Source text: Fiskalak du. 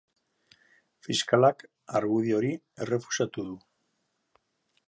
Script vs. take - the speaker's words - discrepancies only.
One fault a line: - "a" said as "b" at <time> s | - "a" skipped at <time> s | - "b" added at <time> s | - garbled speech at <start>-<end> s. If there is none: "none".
- "argudio hori errefusatu" added at 2.0 s